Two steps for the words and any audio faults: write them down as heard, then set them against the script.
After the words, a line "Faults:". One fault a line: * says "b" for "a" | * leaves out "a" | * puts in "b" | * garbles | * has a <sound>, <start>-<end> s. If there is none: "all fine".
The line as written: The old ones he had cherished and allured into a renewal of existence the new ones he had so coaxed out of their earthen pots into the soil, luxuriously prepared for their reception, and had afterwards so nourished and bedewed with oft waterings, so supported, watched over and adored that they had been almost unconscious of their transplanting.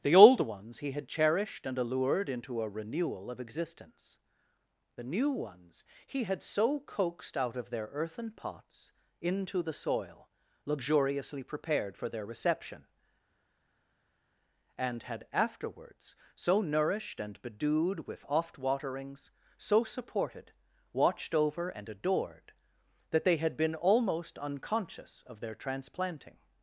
The old ones he had cherished and allured into a renewal of existence the new ones he had so coaxed out of their earthen pots into the soil, luxuriously prepared for their reception, and had afterwards so nourished and bedewed with oft waterings, so supported, watched over and adored that they had been almost unconscious of their transplanting.
Faults:
all fine